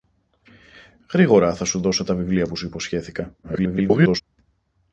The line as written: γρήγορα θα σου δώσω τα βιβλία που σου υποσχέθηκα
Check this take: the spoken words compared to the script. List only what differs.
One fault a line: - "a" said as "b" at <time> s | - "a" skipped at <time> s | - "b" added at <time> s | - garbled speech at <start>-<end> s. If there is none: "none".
- garbled speech at 3.4-4.2 s